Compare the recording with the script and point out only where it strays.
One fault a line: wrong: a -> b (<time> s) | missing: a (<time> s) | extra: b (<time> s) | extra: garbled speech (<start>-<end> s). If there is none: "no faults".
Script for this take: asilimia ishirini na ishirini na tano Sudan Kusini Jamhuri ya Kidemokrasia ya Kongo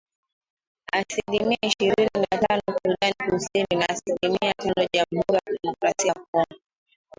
missing: ishirini na (2.4 s)
extra: na asilimia tano (3.8 s)